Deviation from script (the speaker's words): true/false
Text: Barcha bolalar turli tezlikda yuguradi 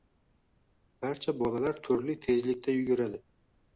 false